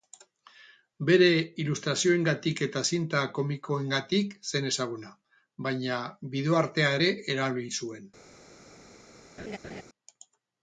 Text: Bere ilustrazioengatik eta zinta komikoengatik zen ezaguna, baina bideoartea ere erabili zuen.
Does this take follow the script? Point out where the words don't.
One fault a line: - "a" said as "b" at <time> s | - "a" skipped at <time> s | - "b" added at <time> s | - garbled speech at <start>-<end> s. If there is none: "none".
none